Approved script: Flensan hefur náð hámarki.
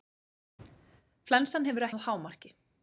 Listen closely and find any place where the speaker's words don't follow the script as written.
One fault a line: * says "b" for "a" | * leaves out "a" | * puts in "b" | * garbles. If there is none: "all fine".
all fine